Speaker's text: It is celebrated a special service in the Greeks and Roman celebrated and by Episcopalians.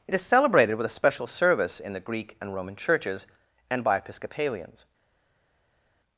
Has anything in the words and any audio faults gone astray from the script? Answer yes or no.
yes